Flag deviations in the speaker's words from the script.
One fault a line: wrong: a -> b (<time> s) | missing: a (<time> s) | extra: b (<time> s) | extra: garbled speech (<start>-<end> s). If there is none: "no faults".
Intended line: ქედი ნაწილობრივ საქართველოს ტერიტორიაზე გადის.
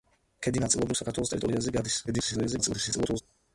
extra: garbled speech (2.1-3.2 s)